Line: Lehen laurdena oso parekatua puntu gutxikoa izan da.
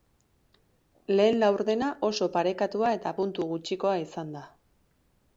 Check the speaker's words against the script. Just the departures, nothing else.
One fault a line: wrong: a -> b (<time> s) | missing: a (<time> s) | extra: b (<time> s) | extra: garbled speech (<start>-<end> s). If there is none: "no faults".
extra: eta (3.0 s)